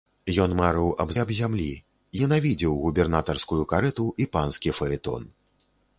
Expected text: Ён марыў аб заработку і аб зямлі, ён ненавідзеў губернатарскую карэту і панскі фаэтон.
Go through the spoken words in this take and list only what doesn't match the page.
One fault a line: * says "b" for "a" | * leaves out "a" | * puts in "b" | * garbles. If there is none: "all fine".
* leaves out "заработку"
* leaves out "ён"